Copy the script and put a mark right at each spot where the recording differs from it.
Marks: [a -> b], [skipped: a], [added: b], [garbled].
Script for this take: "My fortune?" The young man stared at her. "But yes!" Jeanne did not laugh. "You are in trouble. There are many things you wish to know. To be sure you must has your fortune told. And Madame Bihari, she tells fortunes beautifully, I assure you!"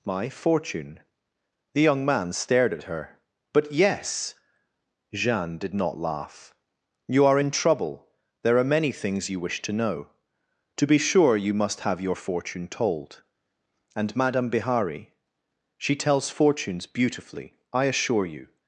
"My fortune?" The young man stared at her. "But yes!" Jeanne did not laugh. "You are in trouble. There are many things you wish to know. To be sure you must [has -> have] your fortune told. And Madame Bihari, she tells fortunes beautifully, I assure you!"